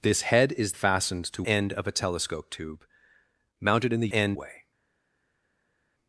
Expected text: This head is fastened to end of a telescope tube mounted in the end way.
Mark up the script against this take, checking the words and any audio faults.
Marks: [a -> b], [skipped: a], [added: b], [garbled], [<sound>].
This head is fastened to end of a telescope tube mounted in the end way.